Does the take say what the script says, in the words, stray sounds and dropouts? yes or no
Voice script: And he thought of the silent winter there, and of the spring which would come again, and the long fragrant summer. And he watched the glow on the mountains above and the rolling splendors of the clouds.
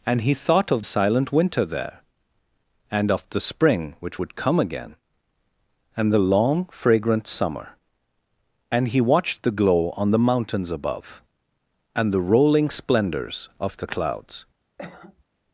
no